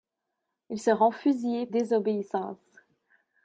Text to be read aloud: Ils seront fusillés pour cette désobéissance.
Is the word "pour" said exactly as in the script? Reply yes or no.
no